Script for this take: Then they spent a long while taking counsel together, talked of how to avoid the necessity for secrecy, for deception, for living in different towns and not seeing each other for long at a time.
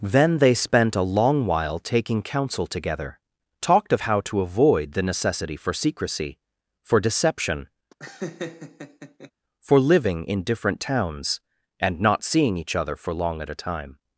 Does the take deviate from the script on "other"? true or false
false